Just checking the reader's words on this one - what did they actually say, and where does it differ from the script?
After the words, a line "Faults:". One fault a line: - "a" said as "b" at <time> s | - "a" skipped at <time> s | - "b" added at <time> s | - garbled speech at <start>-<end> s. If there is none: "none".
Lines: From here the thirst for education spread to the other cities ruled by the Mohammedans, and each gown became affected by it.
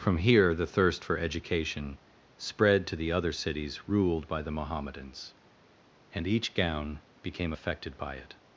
From here the thirst for education spread to the other cities ruled by the Mohammedans, and each gown became affected by it.
Faults:
none